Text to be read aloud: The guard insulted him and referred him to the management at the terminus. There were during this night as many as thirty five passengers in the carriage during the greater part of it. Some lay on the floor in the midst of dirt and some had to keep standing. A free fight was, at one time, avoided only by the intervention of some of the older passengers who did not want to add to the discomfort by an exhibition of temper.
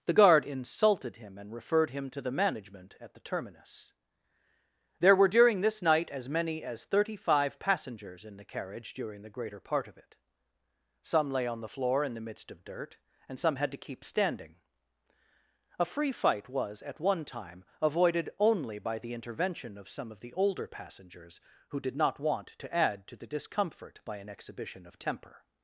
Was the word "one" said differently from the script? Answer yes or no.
no